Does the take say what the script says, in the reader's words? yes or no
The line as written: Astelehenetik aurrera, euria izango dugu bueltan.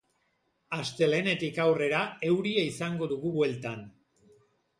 yes